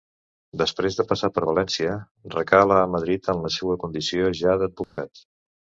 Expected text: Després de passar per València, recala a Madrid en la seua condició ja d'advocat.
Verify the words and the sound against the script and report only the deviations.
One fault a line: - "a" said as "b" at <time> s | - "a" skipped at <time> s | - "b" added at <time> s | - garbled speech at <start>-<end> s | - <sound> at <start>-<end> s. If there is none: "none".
- dropout at 4.8-5.0 s